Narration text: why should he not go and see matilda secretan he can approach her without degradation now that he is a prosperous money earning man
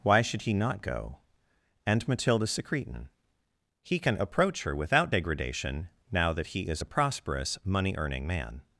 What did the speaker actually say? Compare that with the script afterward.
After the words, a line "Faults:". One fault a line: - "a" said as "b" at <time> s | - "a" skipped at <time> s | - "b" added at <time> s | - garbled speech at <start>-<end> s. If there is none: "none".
why should he not go and matilda secretan he can approach her without degradation now that he is a prosperous money earning man
Faults:
- "see" skipped at 2.1 s